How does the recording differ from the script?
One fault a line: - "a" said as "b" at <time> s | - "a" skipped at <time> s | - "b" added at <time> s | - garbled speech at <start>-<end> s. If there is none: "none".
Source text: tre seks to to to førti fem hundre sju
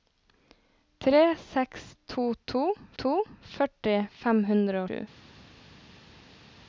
none